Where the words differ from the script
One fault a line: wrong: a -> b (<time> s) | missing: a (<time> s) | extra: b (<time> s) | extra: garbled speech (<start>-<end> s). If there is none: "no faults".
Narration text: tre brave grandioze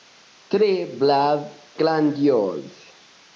no faults